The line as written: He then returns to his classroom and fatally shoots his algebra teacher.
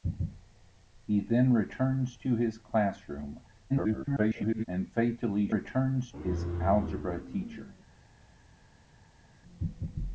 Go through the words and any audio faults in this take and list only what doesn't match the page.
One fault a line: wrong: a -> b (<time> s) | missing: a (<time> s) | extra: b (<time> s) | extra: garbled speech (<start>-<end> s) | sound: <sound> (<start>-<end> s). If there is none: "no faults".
extra: garbled speech (3.7-4.7 s)
wrong: shoots -> returns (5.5 s)